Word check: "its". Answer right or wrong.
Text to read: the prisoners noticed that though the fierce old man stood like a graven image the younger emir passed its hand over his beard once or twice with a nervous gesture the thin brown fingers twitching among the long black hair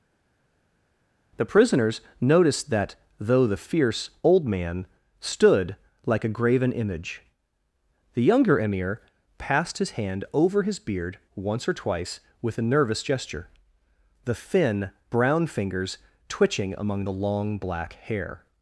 wrong